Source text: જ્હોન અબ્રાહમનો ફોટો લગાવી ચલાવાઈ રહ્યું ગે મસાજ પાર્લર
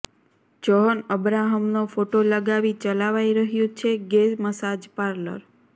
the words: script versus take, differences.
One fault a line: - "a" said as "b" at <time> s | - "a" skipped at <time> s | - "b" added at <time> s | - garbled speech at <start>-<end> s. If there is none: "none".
- "છે" added at 3.8 s